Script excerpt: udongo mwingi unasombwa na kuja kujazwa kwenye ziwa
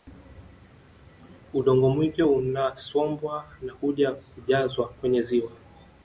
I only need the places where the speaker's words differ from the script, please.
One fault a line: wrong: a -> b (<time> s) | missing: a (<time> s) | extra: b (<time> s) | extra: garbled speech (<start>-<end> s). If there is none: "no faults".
no faults